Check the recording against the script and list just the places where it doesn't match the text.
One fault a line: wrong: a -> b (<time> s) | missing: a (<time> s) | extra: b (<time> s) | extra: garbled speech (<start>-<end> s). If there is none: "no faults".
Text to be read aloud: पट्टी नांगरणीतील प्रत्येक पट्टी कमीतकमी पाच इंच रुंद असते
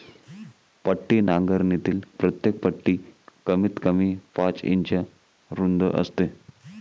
no faults